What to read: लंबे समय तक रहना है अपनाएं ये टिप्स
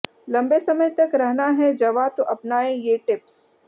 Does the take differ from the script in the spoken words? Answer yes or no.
yes